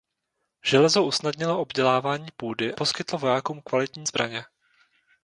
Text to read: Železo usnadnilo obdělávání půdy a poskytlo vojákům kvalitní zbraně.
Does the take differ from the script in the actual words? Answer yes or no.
yes